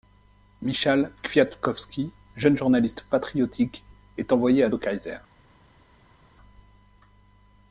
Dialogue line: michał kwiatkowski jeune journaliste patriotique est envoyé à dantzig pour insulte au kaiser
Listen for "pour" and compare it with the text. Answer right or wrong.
wrong